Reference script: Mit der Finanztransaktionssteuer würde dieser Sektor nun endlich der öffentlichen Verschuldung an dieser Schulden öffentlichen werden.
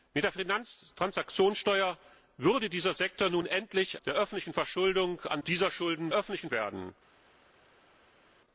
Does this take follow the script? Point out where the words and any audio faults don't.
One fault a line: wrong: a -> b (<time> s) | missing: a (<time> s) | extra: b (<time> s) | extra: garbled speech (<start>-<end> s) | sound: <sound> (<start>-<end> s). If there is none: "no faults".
no faults